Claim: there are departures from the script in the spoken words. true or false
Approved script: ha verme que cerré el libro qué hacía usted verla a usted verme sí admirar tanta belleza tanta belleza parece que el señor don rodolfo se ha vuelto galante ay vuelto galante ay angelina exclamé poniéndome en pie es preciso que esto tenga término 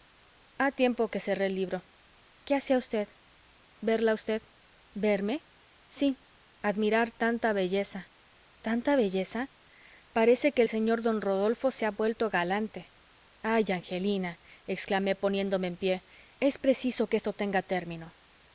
true